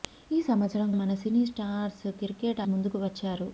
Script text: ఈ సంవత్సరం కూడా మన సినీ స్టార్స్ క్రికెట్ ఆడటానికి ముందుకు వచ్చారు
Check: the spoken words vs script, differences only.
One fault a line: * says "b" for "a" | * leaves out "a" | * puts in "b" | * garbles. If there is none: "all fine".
* leaves out "కూడా"
* leaves out "ఆడటానికి"